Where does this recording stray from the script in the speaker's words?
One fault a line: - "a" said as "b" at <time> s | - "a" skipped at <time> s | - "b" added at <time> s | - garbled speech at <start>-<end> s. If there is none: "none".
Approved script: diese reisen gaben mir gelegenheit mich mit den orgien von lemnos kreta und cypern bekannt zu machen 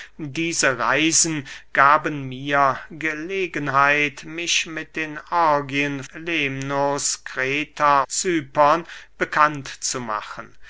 - "von" skipped at 6.0 s
- "und" skipped at 8.0 s